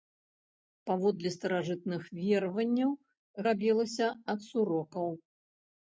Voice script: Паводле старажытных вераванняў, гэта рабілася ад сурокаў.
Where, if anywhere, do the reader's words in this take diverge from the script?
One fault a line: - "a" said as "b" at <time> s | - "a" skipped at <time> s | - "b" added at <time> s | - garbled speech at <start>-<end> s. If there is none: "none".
- "гэта" skipped at 2.9 s